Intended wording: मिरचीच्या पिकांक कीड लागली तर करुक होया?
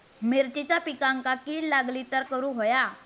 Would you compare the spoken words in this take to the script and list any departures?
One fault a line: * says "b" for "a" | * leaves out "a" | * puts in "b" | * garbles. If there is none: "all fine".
all fine